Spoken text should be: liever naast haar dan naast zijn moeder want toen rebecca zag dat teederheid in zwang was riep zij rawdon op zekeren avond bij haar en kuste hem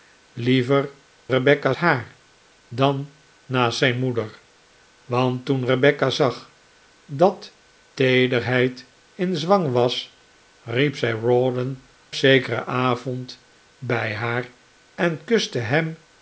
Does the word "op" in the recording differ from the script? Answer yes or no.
yes